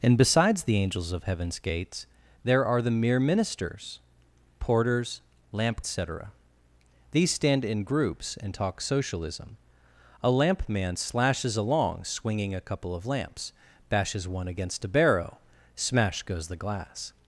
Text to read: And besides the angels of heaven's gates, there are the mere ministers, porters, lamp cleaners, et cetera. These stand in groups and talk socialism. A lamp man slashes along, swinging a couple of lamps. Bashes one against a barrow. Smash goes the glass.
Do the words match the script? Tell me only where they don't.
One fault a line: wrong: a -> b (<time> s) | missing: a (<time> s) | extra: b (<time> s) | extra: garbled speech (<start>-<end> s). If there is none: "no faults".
missing: cleaners et (5.8 s)